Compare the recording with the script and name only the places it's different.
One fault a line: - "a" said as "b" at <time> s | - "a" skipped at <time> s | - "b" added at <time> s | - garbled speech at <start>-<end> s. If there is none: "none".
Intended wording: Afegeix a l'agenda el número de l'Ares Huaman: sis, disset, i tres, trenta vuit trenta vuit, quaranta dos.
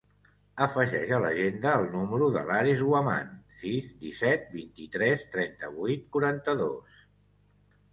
- "vint" added at 4.6 s
- "trenta vuit" skipped at 6.1 s